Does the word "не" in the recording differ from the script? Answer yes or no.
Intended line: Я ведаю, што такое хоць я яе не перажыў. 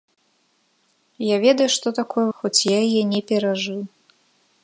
no